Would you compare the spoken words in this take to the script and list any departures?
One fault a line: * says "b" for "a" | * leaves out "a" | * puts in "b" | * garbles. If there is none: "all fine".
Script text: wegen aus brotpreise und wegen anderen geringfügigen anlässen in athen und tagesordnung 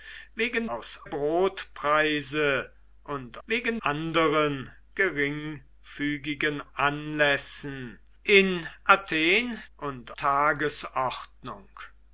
all fine